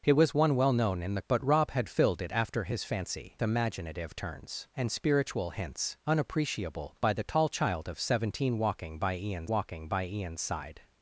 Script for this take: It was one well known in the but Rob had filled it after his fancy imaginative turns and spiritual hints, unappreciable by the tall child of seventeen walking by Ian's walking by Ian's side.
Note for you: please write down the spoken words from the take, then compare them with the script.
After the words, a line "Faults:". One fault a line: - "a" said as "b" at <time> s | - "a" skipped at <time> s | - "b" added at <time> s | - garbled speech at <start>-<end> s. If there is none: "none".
It was one well known in the but Rob had filled it after his fancy imaginative turns and spiritual hints, unappreciable by the tall child of seventeen walking by Ian's walking by Ian's side.
Faults:
none